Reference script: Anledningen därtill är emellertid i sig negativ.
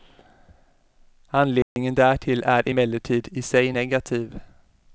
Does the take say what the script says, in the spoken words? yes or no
yes